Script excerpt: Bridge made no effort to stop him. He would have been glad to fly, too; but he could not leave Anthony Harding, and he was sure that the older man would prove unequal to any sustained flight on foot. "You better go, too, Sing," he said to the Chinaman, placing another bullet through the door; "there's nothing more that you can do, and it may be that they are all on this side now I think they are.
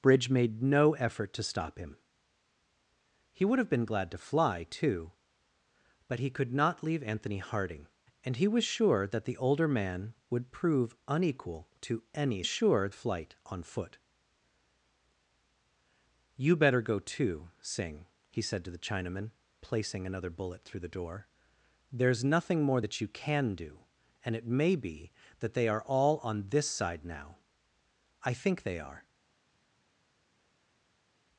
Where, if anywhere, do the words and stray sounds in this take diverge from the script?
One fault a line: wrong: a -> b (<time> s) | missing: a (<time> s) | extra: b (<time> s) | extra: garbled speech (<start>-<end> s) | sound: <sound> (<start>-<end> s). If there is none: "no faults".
wrong: sustained -> sure (12.4 s)